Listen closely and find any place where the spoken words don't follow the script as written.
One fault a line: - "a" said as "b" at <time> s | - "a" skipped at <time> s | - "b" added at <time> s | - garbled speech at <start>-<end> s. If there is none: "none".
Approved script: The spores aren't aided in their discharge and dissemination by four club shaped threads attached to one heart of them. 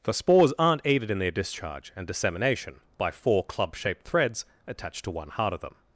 none